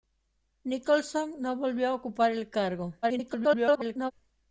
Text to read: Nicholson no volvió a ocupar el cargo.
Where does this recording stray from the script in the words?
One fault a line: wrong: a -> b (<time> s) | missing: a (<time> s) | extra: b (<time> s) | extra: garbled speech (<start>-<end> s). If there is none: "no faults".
extra: garbled speech (3.0-4.1 s)